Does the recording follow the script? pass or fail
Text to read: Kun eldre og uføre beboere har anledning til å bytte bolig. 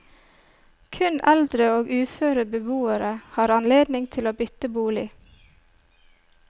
pass